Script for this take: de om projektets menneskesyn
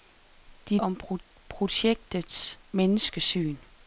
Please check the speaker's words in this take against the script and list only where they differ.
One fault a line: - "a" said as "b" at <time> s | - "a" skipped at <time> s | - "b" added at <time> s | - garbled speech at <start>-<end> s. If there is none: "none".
none